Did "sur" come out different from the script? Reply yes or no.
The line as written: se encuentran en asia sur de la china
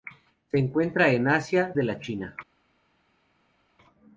yes